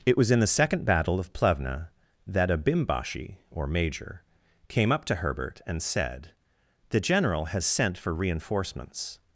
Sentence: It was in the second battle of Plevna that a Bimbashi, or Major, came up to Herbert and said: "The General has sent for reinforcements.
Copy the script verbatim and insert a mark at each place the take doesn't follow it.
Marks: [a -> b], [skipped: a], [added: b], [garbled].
It was in the second battle of Plevna that a Bimbashi, or Major, came up to Herbert and said: "The General has sent for reinforcements.